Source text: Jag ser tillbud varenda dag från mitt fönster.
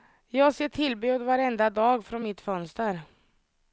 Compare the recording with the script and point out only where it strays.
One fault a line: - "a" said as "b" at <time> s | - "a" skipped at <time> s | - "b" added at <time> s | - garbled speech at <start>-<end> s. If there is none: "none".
none